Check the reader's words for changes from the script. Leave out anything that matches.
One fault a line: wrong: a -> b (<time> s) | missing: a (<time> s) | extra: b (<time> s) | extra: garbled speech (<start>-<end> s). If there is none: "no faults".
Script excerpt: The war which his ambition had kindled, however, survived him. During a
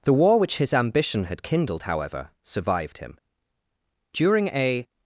no faults